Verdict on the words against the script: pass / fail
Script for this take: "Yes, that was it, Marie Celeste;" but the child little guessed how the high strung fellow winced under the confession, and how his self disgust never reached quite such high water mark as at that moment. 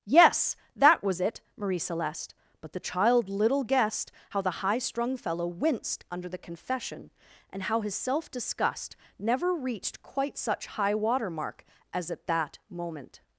pass